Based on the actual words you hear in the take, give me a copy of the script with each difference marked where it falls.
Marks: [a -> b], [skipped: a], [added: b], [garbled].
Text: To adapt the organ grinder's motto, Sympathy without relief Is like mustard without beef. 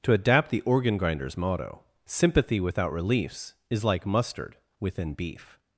To adapt the organ grinder's motto, Sympathy without [relief -> reliefs] Is like mustard [without -> within] beef.